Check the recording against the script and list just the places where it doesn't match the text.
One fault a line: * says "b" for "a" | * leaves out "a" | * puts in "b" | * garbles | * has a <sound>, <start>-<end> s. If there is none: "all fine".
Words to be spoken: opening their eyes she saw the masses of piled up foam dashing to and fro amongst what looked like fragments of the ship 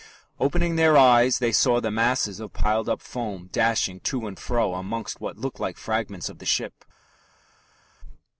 * says "they" for "she"